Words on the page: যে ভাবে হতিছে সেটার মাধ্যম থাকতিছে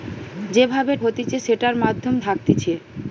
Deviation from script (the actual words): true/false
false